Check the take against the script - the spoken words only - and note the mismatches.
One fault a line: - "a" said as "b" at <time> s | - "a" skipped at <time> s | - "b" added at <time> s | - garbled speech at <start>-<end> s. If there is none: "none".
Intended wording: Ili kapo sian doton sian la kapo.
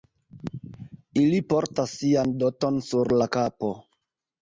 - "kapo" said as "portas" at 1.5 s
- "sian" said as "sur" at 2.9 s